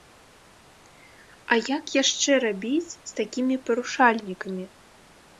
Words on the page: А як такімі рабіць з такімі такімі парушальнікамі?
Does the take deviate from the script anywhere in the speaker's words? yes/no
yes